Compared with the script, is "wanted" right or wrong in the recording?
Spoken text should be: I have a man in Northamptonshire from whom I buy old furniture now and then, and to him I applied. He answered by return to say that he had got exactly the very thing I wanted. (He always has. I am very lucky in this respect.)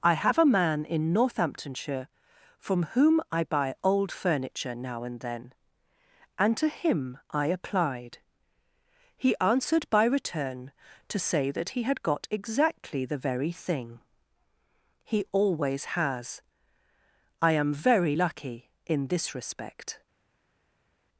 wrong